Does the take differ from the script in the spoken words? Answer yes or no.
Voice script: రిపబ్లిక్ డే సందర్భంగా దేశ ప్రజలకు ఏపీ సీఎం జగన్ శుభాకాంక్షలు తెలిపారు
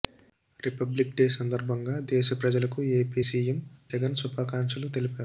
no